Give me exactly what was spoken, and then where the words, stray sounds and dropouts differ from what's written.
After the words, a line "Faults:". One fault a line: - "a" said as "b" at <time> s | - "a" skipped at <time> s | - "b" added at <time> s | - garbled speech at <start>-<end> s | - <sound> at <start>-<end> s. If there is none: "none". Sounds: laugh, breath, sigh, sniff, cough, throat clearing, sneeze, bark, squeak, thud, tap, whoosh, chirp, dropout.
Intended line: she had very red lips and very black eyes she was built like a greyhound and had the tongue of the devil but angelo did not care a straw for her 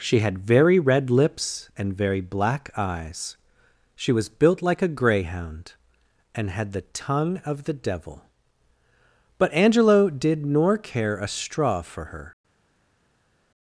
she had very red lips and very black eyes she was built like a greyhound and had the tongue of the devil but angelo did nor care a straw for her
Faults:
- "not" said as "nor" at 10.4 s